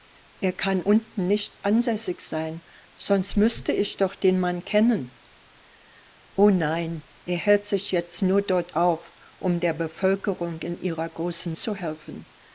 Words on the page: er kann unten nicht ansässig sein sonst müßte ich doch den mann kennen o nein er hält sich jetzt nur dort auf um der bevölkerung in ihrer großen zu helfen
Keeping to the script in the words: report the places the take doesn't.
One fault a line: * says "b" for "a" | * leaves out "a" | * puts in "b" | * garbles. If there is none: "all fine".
all fine